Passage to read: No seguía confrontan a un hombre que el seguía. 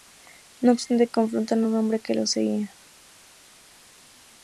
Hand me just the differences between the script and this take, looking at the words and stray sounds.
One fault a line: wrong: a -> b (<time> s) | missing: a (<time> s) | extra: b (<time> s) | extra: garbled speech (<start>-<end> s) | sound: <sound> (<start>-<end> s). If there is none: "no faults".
wrong: seguía -> obstante (0.7 s)
wrong: el -> los (2.1 s)